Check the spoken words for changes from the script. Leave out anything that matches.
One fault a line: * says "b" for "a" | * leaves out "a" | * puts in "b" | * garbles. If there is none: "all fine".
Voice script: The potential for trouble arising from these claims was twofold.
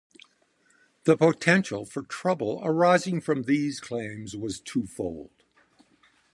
all fine